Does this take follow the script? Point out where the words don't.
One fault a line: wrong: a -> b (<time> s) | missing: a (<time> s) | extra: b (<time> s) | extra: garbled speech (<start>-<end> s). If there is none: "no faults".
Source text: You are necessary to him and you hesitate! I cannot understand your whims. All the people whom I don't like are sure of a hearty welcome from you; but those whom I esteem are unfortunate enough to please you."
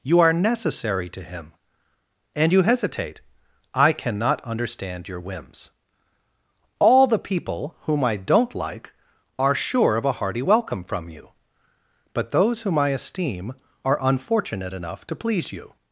no faults